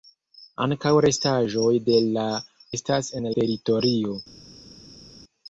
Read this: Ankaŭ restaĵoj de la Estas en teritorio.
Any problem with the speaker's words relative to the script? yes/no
no